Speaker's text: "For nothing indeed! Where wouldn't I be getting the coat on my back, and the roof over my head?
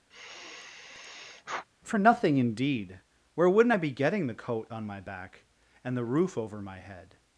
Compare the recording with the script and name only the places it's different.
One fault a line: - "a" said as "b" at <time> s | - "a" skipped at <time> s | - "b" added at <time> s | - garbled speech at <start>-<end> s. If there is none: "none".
none